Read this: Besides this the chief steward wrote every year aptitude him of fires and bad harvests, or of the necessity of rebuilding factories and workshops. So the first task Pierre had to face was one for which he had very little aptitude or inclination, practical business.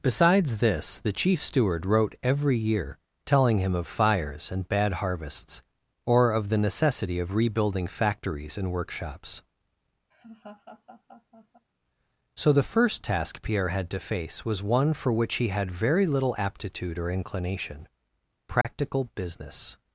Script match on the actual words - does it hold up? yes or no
no